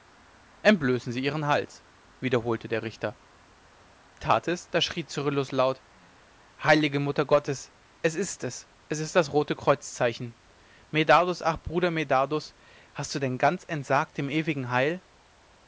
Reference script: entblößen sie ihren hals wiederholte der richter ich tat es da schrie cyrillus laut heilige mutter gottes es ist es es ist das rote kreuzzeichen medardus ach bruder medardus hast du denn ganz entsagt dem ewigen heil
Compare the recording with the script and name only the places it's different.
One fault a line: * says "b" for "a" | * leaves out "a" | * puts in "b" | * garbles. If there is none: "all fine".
* leaves out "ich"